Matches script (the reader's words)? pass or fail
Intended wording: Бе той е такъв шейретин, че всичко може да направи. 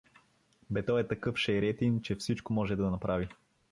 pass